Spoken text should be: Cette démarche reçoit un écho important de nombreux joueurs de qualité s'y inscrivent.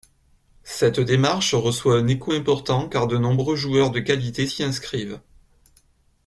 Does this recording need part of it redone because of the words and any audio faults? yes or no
yes